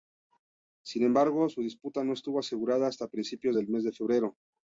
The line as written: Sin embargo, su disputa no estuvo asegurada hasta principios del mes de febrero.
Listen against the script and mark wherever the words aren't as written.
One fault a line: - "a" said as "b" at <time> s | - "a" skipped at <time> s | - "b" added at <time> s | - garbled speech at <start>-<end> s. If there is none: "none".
none